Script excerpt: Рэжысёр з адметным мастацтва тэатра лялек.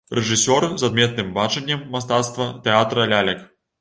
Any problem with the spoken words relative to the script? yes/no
yes